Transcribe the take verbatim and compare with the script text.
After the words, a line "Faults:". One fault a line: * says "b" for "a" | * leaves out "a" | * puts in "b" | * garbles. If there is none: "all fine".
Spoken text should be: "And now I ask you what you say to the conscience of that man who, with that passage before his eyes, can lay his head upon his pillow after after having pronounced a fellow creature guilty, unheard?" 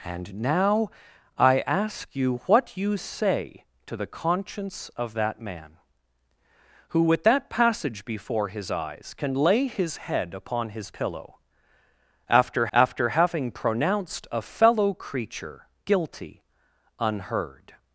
"And now I ask you what you say to the conscience of that man who, with that passage before his eyes, can lay his head upon his pillow after after having pronounced a fellow creature guilty, unheard?"
Faults:
all fine